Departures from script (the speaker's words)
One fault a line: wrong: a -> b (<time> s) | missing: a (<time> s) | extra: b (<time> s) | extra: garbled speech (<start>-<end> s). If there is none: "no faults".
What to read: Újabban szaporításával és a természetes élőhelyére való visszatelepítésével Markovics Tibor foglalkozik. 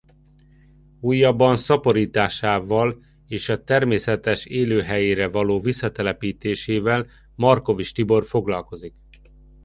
no faults